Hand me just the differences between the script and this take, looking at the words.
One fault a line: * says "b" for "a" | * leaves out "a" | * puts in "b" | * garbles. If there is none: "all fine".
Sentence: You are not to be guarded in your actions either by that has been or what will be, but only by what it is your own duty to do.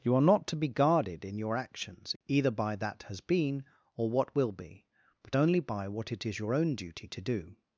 all fine